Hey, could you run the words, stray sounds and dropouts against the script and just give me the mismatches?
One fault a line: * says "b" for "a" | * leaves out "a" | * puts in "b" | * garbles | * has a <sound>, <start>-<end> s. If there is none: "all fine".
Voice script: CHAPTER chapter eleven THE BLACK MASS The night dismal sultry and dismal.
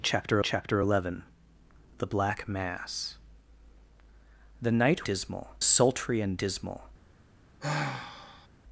* has a sigh, 7.6-8.5 s